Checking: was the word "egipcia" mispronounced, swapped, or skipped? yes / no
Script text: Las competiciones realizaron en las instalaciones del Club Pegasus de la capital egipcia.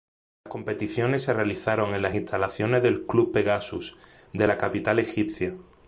no